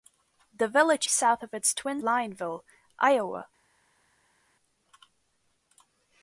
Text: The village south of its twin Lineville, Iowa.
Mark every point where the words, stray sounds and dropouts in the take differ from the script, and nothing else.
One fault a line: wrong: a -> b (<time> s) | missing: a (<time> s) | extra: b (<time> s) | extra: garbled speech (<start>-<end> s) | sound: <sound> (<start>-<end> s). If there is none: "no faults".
no faults